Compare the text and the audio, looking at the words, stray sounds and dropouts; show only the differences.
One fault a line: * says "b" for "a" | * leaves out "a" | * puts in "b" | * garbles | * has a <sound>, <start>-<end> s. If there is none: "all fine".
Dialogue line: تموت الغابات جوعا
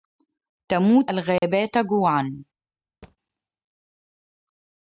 * has a dropout, 1.4-1.4 s
* has a thud, 3.0-3.2 s